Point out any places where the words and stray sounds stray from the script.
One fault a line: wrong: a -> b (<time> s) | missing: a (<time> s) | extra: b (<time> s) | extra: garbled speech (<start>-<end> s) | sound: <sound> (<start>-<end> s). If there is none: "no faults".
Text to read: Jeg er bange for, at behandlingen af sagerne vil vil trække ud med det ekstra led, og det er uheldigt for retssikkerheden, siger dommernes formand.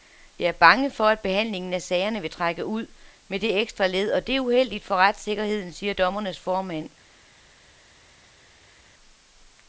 missing: vil (2.3 s)